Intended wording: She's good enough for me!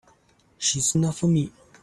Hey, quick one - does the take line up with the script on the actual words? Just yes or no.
no